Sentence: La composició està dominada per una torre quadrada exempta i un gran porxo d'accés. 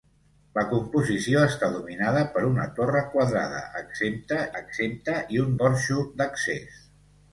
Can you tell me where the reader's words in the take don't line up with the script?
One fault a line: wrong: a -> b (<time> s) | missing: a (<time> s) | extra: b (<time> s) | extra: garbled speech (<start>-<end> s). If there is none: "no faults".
extra: exempta (4.6 s)
missing: gran (5.6 s)